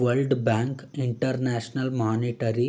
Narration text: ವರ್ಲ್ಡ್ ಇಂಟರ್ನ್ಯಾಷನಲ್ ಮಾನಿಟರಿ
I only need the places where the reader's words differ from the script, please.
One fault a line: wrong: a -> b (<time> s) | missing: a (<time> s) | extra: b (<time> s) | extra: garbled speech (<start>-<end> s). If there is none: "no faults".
extra: ಬ್ಯಾಂಕ್ (0.3 s)